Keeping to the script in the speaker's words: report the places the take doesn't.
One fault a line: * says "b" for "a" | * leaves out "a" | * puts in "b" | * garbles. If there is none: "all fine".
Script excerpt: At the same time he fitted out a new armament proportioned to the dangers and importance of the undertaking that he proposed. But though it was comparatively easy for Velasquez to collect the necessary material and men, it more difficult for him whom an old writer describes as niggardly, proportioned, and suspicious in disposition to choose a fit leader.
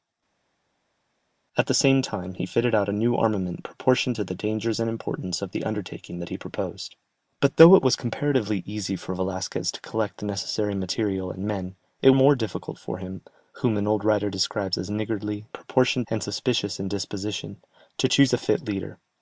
all fine